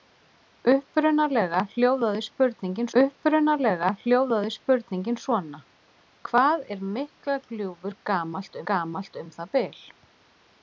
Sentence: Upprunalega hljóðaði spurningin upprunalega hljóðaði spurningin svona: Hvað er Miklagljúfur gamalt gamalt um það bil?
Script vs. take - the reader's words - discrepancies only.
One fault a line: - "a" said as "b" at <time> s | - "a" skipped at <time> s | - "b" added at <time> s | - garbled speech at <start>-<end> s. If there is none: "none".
none